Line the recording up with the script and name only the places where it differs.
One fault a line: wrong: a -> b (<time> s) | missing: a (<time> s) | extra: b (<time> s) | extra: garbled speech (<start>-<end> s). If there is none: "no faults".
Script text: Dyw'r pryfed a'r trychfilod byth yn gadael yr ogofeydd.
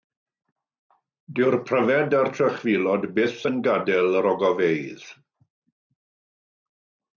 no faults